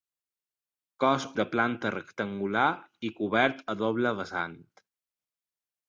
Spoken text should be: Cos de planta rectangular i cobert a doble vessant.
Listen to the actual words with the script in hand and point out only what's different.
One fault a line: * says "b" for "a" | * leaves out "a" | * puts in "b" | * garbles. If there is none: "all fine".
all fine